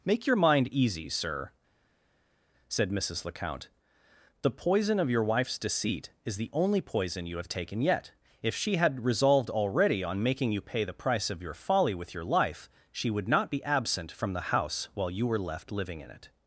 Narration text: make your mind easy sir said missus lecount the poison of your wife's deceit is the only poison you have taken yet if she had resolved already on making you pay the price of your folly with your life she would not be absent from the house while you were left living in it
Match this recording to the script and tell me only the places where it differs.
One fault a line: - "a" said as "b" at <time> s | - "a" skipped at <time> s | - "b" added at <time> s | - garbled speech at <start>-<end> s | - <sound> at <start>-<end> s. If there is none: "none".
none